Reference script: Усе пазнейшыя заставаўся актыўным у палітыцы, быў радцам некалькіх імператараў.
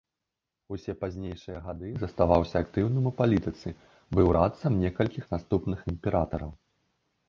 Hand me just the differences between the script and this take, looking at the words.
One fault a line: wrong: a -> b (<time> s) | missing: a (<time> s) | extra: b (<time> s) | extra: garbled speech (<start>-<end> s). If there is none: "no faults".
extra: гады (1.6 s)
extra: наступных (5.4 s)